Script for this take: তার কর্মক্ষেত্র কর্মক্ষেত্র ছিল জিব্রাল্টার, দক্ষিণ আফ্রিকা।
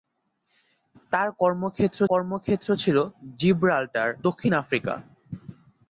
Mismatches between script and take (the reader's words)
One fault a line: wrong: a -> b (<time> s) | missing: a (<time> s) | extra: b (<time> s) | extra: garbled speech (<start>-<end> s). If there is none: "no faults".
no faults